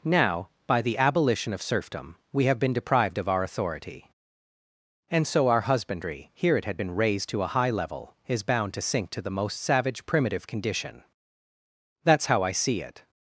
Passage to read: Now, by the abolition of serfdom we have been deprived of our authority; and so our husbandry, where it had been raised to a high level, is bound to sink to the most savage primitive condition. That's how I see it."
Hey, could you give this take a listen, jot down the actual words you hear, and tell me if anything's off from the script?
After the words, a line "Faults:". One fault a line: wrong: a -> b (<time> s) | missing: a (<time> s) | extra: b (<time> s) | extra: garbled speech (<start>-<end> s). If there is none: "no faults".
Now, by the abolition of serfdom we have been deprived of our authority; and so our husbandry, here it had been raised to a high level, is bound to sink to the most savage primitive condition. That's how I see it."
Faults:
wrong: where -> here (6.3 s)